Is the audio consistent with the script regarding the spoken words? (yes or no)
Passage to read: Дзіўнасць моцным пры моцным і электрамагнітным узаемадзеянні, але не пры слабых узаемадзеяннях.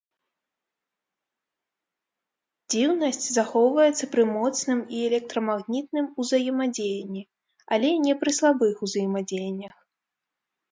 no